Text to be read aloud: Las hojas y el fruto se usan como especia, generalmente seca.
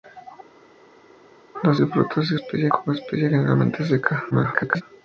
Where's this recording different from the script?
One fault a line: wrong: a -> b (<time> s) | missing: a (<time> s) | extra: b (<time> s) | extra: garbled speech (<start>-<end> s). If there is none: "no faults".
missing: hojas (1.8 s)
wrong: usan -> especia (2.3 s)
extra: garbled speech (4.3-4.8 s)